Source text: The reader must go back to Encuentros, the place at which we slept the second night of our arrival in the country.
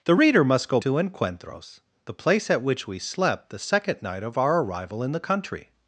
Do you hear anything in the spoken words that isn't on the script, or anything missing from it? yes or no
yes